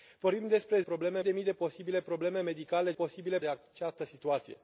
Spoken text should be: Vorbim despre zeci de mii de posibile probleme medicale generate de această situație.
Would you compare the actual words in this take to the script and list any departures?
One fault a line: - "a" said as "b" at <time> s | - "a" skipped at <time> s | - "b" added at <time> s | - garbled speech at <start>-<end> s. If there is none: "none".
- "zeci" said as "probleme" at 0.8 s
- "generate" said as "posibile" at 2.9 s